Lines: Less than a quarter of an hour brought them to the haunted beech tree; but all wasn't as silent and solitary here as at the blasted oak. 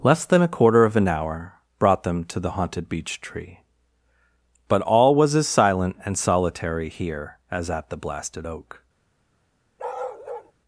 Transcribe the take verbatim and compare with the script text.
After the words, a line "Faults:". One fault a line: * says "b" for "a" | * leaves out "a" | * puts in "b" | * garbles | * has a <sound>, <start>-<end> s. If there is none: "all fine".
Less than a quarter of an hour brought them to the haunted beech tree; but all was as silent and solitary here as at the blasted oak.
Faults:
* says "was" for "wasn't"
* has a bark, 9.8-10.5 s